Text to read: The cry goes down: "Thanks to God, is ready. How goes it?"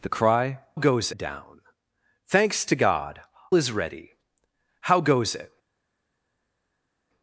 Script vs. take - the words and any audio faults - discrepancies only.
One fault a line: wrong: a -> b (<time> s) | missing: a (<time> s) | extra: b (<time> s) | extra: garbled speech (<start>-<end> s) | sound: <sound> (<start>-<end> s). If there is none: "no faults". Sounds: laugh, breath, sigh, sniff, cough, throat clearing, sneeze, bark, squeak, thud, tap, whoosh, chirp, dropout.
no faults